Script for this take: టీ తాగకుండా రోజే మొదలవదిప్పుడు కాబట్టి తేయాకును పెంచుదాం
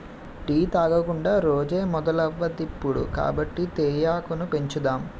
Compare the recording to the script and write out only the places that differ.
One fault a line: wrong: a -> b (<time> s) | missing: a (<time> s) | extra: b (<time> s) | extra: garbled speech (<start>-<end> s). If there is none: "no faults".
no faults